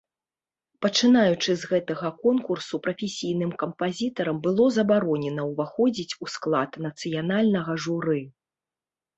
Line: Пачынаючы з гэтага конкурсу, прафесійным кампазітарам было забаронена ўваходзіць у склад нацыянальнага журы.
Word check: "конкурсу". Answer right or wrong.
right